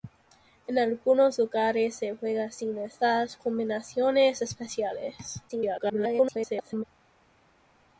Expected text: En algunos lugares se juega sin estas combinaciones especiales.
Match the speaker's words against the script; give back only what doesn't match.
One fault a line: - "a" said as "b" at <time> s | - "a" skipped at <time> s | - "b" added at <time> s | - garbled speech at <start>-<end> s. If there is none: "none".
- garbled speech at 5.5-6.8 s